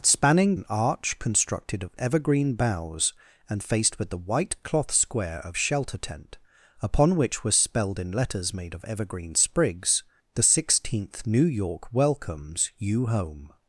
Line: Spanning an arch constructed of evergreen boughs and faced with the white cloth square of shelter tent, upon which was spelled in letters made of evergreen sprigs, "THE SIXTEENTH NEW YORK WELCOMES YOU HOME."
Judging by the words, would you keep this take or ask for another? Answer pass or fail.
pass